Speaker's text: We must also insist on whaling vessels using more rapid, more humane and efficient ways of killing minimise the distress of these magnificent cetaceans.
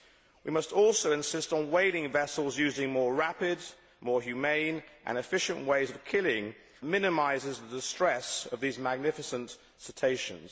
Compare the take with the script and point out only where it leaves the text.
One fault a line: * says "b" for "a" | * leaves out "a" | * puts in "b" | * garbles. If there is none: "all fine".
all fine